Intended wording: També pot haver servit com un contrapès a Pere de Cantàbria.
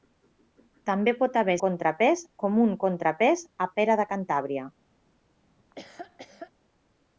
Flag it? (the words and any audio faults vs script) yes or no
yes